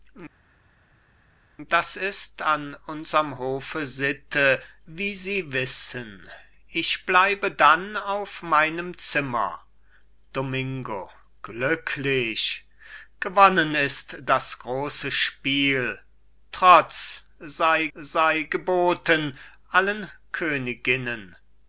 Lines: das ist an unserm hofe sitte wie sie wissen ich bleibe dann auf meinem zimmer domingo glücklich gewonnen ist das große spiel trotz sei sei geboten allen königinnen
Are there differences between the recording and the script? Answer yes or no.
no